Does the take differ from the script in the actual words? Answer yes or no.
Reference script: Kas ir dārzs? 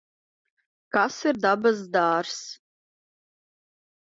yes